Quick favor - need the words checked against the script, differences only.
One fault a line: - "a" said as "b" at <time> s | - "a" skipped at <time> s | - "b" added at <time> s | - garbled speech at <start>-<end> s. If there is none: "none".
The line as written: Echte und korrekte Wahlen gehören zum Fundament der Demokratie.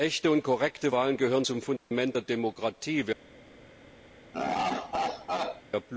none